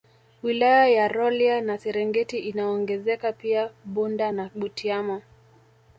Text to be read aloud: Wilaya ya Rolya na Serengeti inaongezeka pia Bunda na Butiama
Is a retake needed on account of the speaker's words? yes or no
no